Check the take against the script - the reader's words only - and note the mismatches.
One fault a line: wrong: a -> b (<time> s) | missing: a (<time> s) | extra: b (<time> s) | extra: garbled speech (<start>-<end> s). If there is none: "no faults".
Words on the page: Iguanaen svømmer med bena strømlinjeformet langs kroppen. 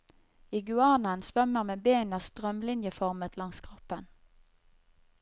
no faults